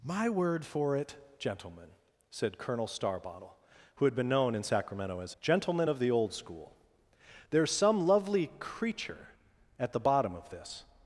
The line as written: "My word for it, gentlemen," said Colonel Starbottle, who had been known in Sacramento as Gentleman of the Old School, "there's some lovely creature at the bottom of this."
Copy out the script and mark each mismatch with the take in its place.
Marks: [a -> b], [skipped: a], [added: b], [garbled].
"My word for it, gentlemen," said Colonel Starbottle, who had been known in Sacramento as Gentleman of the Old School, "there's some lovely creature at the bottom of this."